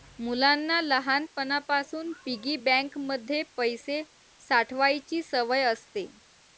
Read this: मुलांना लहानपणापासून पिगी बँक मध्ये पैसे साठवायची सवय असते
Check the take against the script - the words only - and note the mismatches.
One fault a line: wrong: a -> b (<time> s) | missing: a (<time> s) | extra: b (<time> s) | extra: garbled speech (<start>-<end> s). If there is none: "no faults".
no faults